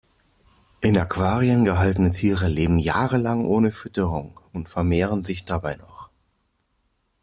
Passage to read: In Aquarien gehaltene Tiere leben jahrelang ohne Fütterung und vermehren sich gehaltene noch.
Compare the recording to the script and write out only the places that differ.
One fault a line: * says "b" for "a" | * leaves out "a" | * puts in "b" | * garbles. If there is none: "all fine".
* says "dabei" for "gehaltene"